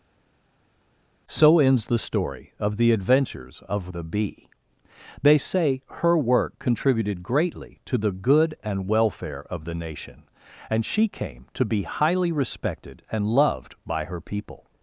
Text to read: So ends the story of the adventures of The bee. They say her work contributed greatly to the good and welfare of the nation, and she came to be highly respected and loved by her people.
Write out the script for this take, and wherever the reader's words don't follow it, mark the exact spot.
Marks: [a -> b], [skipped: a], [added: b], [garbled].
So ends the story of the adventures of The bee. They say her work contributed greatly to the good and welfare of the nation, and she came to be highly respected and loved by her people.